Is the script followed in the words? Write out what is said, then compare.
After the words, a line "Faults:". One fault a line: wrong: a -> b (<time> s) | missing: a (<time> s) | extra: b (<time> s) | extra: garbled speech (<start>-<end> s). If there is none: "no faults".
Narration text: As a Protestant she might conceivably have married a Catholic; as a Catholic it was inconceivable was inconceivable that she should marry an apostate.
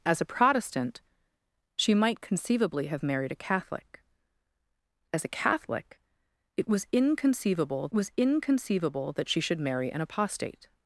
As a Protestant she might conceivably have married a Catholic; as a Catholic it was inconceivable was inconceivable that she should marry an apostate.
Faults:
no faults